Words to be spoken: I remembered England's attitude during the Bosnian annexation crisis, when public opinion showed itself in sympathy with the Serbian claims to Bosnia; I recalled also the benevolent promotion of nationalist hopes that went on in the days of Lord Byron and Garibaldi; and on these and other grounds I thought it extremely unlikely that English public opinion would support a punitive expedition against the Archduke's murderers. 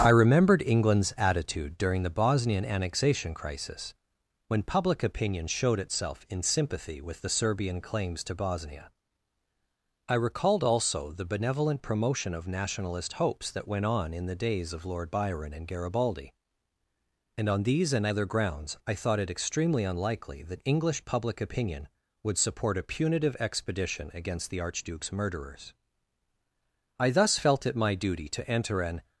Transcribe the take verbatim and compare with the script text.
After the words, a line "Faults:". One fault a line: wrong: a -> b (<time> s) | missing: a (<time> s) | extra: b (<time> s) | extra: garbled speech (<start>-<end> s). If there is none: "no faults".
I remembered England's attitude during the Bosnian annexation crisis, when public opinion showed itself in sympathy with the Serbian claims to Bosnia; I recalled also the benevolent promotion of nationalist hopes that went on in the days of Lord Byron and Garibaldi; and on these and other grounds I thought it extremely unlikely that English public opinion would support a punitive expedition against the Archduke's murderers. I thus felt it my duty to enter an
Faults:
extra: I thus felt it my duty to enter an (27.0 s)